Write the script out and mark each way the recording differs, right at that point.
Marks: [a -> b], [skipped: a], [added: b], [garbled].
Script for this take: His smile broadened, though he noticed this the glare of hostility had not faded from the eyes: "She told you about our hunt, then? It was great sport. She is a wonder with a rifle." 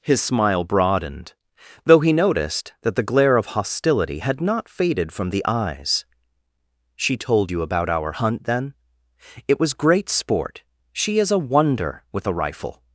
His smile broadened, though he noticed [this -> that] the glare of hostility had not faded from the eyes: "She told you about our hunt, then? It was great sport. She is a wonder with a rifle."